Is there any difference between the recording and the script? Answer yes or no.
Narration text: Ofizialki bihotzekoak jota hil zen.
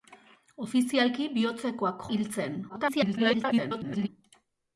yes